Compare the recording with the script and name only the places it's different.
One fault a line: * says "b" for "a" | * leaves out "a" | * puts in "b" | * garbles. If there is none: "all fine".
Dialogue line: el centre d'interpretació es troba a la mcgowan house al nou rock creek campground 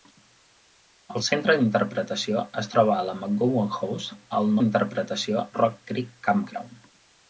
* says "d'interpretació" for "nou"